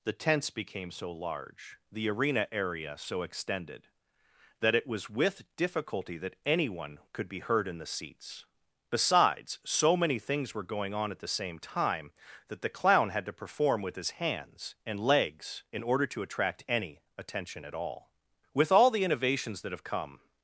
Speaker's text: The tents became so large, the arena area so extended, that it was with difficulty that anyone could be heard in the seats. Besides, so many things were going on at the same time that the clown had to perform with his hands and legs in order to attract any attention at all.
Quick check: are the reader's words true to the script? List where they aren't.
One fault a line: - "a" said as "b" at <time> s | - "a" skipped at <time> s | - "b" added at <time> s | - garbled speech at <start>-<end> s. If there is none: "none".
- "With all the innovations that have come" added at 18.5 s